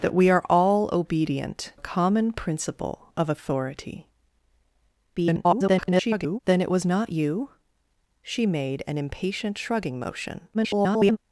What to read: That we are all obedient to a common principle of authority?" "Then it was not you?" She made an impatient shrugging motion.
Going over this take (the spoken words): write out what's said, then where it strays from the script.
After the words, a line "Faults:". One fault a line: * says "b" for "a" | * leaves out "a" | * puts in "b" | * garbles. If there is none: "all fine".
That we are all obedient a common principle of authority?" [garbled] "Then it was not you?" She made an impatient shrugging motion. [garbled]
Faults:
* leaves out "to"
* garbles
* garbles